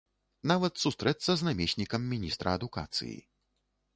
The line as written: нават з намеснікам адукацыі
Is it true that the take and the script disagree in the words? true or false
true